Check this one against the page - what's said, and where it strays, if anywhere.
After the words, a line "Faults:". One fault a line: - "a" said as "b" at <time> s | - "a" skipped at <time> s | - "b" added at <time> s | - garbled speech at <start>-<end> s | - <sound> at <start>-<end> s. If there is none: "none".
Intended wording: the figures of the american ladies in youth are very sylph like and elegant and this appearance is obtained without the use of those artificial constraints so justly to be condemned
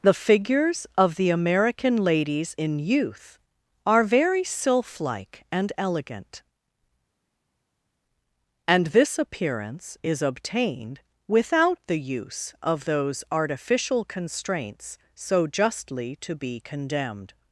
the figures of the american ladies in youth are very sylph like and elegant and this appearance is obtained without the use of those artificial constraints so justly to be condemned
Faults:
none